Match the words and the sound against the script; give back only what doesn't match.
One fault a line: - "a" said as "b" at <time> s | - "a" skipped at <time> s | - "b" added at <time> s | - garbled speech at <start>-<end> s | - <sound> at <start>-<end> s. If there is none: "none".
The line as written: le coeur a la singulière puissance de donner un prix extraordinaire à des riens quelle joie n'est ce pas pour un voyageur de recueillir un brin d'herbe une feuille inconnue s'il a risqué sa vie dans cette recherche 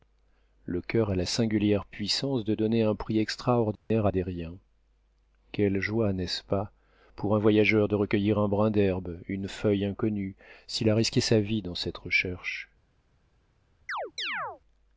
- dropout at 3.8-3.9 s
- chirp at 13.9-14.6 s